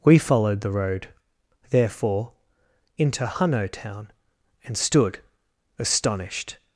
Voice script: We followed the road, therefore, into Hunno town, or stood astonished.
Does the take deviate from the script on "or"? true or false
true